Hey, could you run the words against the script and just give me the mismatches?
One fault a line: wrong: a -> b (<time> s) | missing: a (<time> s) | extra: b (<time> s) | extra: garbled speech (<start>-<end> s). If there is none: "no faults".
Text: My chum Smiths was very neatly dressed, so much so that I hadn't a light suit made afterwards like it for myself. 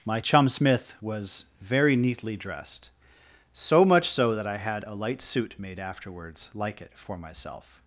wrong: Smiths -> Smith (0.5 s)
wrong: hadn't -> had (4.6 s)